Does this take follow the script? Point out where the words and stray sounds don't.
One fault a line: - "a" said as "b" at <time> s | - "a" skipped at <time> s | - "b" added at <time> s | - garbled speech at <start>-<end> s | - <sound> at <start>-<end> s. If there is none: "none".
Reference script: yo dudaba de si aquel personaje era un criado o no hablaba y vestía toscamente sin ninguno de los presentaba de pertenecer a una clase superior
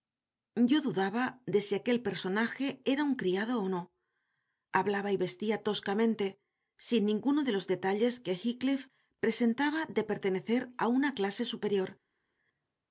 - "detalles que heathcliff" added at 7.7 s